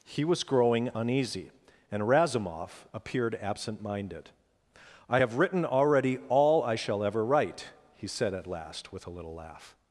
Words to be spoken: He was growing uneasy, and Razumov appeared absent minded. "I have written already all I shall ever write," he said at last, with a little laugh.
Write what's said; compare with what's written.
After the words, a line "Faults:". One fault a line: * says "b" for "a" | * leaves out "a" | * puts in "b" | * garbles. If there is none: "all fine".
He was growing uneasy, and Razumov appeared absent minded. "I have written already all I shall ever write," he said at last, with a little laugh.
Faults:
all fine